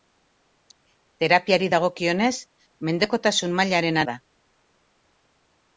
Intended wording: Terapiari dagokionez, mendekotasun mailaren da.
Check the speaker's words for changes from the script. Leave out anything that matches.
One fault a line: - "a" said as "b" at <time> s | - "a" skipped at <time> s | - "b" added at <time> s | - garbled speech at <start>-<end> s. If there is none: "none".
none